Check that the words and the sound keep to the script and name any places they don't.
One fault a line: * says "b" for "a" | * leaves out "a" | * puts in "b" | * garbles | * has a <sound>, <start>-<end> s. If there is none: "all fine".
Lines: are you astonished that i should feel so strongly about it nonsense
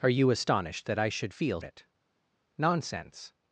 * leaves out "so strongly about"